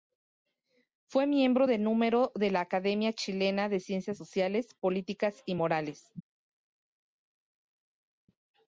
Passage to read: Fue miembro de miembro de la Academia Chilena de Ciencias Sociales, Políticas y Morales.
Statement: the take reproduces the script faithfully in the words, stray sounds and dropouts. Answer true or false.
false